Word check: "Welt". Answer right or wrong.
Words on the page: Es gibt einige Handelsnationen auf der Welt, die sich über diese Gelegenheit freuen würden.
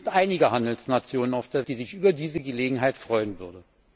wrong